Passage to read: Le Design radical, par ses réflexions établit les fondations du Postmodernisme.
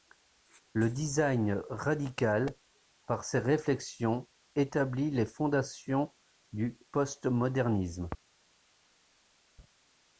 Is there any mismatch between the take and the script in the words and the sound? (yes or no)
no